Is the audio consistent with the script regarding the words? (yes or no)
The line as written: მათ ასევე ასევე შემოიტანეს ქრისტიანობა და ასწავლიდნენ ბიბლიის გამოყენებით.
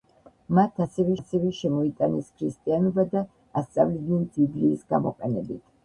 yes